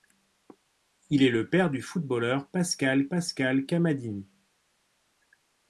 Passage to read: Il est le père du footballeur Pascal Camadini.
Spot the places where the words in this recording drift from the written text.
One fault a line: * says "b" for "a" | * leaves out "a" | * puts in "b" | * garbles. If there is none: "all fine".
* puts in "Pascal"